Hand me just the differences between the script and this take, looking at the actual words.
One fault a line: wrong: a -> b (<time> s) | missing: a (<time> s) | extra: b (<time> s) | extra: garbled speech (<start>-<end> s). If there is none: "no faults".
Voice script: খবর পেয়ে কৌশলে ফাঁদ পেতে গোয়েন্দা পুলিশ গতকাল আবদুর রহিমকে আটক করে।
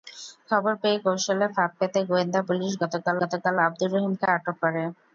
extra: গতকাল (3.2 s)